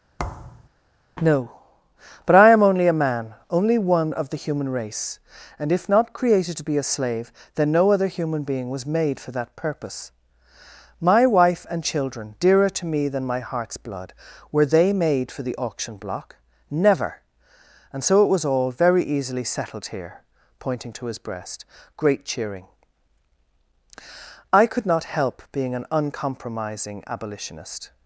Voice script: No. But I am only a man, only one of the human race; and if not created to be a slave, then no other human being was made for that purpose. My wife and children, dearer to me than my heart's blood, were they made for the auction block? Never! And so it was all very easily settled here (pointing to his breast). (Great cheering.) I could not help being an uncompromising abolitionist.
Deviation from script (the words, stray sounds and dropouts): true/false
true